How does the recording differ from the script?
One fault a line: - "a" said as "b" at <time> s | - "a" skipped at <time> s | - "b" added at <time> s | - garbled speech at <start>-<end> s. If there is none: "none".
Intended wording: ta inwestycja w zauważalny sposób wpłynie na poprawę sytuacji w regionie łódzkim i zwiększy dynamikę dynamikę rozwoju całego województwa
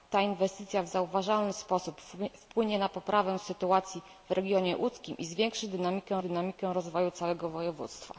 none